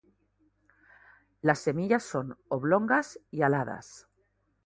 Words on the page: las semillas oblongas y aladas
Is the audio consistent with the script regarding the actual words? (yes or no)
no